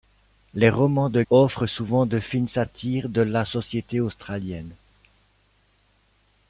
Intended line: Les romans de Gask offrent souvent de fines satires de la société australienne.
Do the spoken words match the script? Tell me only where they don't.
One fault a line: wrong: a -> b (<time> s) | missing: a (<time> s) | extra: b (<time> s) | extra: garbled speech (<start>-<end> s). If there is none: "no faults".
missing: Gask (1.2 s)